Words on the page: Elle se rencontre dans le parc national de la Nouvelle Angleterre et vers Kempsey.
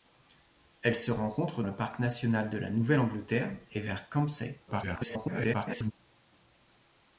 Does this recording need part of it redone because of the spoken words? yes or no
yes